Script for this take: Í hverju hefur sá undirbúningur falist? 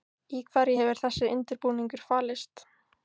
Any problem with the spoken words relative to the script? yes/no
yes